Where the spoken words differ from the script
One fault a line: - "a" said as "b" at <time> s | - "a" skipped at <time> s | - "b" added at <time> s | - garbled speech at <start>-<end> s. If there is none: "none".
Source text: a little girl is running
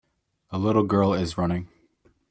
none